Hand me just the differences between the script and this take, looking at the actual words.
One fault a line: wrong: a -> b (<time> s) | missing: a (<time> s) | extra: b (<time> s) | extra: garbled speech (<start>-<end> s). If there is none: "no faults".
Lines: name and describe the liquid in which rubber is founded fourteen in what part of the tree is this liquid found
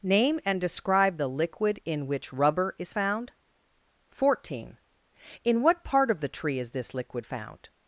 wrong: founded -> found (2.9 s)